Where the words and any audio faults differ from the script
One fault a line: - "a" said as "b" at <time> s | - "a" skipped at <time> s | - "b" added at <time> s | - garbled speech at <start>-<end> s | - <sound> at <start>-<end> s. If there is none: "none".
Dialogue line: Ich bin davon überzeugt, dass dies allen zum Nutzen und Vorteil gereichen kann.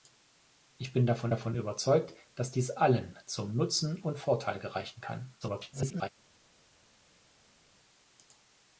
- "davon" added at 1.3 s
- garbled speech at 5.4-6.1 s